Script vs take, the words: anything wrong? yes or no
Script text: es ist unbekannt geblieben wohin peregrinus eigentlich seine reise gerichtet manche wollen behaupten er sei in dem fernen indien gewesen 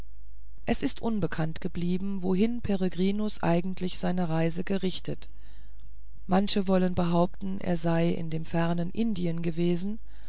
no